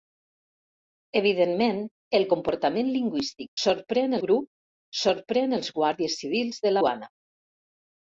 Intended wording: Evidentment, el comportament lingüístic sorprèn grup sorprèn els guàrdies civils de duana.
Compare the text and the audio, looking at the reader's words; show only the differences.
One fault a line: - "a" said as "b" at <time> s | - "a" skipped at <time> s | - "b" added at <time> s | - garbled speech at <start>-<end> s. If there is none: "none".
none